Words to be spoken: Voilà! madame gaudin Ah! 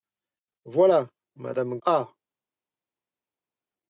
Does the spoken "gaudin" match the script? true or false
false